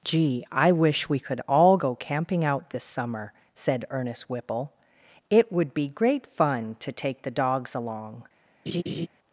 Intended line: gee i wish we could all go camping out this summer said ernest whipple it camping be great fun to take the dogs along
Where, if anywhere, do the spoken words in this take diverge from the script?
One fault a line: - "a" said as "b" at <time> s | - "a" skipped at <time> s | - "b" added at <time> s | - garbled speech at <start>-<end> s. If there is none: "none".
- "camping" said as "would" at 5.5 s